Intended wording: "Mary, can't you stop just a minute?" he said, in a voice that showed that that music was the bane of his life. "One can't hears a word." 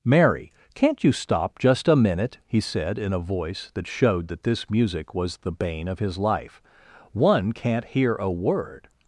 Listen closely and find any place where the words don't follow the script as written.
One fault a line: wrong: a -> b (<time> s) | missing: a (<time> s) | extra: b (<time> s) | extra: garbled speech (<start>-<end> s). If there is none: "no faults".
wrong: that -> this (4.4 s)
wrong: hears -> hear (7.8 s)